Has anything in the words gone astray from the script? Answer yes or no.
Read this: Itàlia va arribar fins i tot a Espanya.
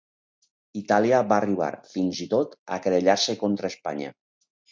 yes